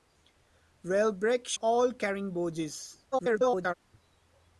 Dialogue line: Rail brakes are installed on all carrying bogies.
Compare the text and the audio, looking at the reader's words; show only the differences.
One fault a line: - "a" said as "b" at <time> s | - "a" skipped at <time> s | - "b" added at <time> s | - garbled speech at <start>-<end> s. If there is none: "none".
- "are installed on" skipped at 1.6 s
- garbled speech at 3.1-3.7 s